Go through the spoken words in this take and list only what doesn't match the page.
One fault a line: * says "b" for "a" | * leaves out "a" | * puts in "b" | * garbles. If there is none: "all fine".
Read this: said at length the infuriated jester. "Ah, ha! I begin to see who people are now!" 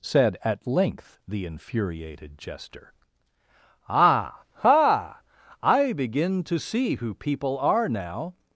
all fine